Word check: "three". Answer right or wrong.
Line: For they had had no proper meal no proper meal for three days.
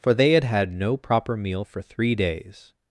right